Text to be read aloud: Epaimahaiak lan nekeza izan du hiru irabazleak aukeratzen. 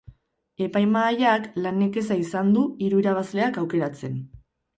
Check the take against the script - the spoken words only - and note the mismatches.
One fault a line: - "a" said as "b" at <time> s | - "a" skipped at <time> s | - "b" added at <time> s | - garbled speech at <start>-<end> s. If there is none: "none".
none